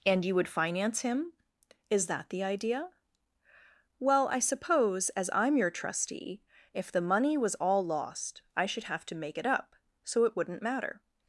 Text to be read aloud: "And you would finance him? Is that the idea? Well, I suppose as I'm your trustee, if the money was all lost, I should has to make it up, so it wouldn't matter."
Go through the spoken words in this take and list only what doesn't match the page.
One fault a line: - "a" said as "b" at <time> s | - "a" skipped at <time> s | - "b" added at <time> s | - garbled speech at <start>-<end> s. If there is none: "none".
- "has" said as "have" at 8.8 s